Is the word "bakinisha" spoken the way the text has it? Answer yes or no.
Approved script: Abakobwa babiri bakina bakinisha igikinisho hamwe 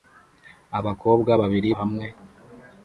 no